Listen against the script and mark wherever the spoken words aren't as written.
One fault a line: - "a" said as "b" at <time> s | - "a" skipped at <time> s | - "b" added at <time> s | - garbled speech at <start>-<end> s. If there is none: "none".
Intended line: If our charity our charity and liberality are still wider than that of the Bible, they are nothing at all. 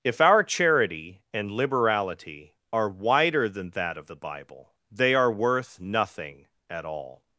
- "our charity" skipped at 1.2 s
- "still" skipped at 2.9 s
- "worth" added at 5.3 s